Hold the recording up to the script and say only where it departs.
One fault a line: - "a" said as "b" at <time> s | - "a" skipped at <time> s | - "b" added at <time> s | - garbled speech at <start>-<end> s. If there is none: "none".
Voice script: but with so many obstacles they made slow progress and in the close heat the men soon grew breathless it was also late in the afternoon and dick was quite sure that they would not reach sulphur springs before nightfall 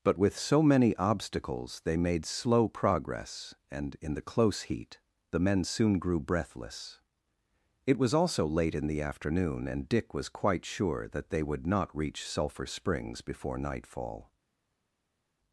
none